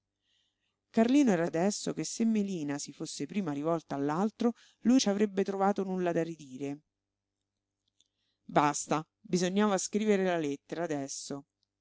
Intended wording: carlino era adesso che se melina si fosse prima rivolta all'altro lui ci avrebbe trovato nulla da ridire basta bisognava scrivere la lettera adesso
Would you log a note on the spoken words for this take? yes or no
no